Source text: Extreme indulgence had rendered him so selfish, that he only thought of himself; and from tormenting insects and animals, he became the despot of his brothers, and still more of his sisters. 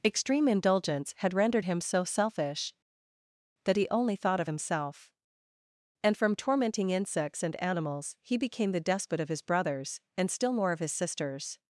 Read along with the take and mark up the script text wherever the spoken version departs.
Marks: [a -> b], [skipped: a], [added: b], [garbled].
Extreme indulgence had rendered him so selfish, that he only thought of himself; and from tormenting insects and animals, he became the despot of his brothers, and still more of his sisters.